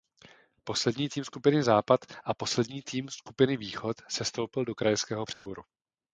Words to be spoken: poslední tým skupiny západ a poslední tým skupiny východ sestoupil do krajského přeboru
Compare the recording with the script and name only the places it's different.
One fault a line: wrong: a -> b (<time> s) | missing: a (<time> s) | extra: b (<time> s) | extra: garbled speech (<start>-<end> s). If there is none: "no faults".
no faults